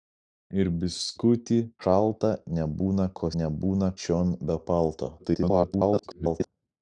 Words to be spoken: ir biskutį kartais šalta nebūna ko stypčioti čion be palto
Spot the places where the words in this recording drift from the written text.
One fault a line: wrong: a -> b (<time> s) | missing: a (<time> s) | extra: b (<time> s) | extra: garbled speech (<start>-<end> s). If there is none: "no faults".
missing: kartais (1.6 s)
wrong: stypčioti -> nebūna (3.4 s)
extra: garbled speech (5.2-6.5 s)